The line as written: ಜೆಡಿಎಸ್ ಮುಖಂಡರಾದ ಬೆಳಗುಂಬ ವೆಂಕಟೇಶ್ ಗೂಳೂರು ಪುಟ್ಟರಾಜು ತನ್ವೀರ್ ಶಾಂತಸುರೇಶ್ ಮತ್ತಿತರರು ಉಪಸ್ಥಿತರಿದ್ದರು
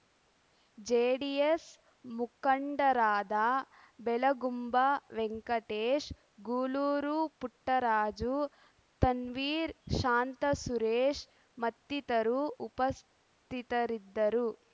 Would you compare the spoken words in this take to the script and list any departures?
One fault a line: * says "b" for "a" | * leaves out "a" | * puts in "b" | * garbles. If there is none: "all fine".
all fine